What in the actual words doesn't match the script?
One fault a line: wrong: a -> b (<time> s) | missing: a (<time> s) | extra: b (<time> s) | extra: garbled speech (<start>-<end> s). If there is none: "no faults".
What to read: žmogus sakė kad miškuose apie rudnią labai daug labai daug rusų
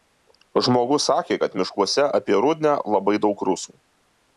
missing: labai daug (3.5 s)